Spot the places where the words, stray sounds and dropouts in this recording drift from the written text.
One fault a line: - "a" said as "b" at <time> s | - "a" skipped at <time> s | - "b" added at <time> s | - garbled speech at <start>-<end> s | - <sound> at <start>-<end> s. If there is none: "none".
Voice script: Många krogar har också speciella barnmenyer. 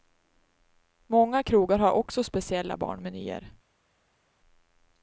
none